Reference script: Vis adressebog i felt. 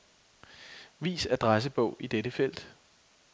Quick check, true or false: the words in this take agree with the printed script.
false